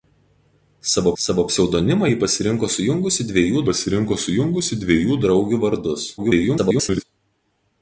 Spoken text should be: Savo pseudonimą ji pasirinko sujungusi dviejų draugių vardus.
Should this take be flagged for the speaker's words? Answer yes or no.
yes